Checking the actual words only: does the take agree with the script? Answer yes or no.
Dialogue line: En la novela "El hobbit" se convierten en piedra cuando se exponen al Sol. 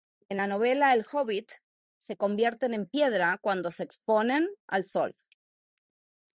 yes